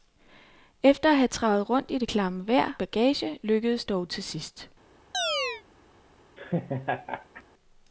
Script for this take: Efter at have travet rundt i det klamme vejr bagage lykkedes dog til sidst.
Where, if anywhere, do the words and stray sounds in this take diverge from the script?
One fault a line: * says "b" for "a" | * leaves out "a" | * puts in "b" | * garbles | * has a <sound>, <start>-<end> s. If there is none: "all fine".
* has a chirp, 5.1-5.6 s
* has a laugh, 6.4-7.4 s